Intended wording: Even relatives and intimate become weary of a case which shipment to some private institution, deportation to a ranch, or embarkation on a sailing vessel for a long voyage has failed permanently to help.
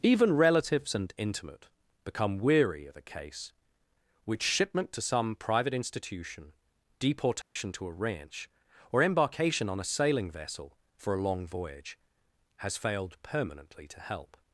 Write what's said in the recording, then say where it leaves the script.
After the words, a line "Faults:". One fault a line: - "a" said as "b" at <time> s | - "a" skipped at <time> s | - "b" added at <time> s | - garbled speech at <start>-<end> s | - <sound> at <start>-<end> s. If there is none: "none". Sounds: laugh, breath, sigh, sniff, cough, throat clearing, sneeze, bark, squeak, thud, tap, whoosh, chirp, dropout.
Even relatives and intimate become weary of a case which shipment to some private institution, deportation to a ranch, or embarkation on a sailing vessel for a long voyage has failed permanently to help.
Faults:
- dropout at 7.4-7.6 s